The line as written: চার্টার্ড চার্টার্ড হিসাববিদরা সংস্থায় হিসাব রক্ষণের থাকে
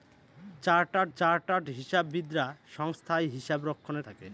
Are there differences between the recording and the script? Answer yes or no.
no